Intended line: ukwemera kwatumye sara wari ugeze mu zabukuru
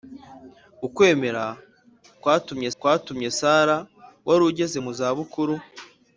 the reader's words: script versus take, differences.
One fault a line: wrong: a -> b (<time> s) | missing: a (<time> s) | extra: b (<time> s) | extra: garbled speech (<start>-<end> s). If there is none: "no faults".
extra: kwatumye (2.8 s)